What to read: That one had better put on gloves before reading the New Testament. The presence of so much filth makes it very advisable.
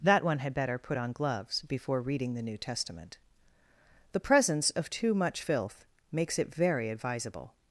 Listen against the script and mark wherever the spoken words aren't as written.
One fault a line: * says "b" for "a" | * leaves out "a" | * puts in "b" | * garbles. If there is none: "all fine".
* says "too" for "so"